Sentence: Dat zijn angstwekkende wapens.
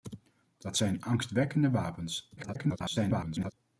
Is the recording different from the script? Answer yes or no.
yes